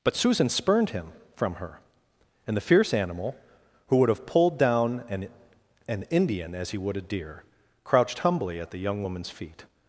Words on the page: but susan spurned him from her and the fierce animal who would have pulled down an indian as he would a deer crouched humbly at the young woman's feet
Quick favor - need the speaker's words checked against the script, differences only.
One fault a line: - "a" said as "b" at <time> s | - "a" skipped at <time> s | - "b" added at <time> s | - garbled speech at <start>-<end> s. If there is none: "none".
- "an" added at 5.9 s